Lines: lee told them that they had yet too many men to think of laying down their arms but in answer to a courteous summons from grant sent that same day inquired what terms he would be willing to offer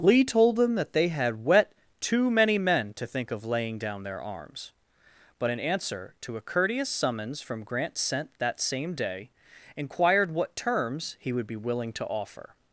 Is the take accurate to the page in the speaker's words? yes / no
no